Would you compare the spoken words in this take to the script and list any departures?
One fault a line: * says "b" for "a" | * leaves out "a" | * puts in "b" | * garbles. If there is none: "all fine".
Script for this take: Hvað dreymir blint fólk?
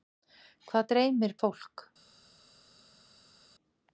* leaves out "blint"